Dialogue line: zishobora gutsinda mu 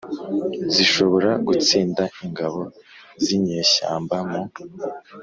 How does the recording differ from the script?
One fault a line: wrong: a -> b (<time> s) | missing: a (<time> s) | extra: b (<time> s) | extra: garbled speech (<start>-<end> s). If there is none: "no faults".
extra: ingabo z'inyeshyamba (2.2 s)